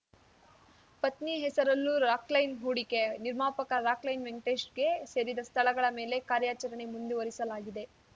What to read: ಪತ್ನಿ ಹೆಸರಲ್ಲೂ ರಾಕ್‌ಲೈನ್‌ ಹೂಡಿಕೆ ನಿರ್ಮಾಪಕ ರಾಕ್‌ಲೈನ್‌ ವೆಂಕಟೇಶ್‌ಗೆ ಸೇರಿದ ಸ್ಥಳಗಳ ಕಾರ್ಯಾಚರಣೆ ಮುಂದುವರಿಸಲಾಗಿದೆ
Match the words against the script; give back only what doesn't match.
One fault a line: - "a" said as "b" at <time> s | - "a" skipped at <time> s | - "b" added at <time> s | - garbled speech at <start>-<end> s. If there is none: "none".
- "ಮೇಲೆ" added at 6.0 s